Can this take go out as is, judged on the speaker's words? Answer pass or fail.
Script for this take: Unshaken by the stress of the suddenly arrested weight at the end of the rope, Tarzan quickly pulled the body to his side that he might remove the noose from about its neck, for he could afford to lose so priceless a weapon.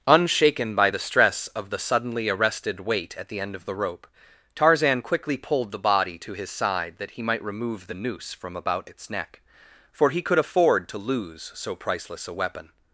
pass